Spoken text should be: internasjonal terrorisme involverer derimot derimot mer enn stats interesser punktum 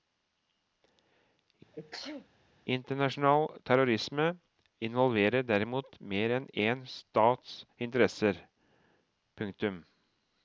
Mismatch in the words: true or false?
true